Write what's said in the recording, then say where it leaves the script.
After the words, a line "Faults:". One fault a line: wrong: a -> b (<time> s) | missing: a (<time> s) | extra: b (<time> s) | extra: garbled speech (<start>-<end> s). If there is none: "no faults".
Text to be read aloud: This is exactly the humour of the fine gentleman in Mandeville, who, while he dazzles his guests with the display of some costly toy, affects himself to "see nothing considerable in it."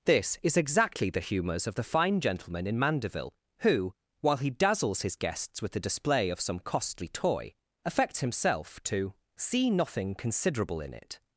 This is exactly the humours of the fine gentleman in Mandeville, who, while he dazzles his guests with the display of some costly toy, affects himself to "see nothing considerable in it."
Faults:
wrong: humour -> humours (1.2 s)